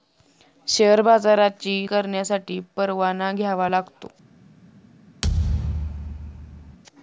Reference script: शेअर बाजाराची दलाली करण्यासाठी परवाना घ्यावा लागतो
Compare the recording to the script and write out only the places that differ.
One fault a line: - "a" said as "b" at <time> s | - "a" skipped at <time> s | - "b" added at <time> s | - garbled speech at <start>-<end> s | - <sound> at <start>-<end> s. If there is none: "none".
- "दलाली" skipped at 1.8 s
- thud at 5.2-6.8 s